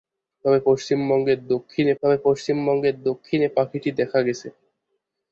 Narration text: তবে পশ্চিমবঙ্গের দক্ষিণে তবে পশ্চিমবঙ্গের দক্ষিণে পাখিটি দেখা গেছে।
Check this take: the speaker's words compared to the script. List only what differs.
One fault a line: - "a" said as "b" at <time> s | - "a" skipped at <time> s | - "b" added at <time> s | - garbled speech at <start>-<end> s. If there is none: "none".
none